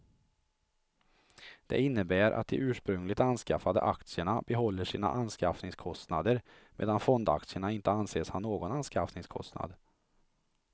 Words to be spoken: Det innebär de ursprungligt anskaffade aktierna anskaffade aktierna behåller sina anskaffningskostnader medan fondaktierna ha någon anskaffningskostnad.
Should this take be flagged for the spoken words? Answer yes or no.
yes